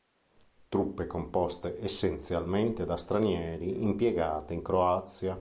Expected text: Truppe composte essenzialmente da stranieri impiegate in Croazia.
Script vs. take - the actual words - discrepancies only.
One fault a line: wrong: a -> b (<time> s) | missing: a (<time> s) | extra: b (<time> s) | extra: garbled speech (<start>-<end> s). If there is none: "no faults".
no faults